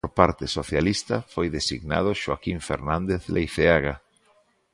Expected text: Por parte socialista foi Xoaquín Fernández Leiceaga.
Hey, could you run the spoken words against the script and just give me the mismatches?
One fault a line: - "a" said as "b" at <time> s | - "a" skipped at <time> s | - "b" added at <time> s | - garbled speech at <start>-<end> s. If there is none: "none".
- "designado" added at 1.5 s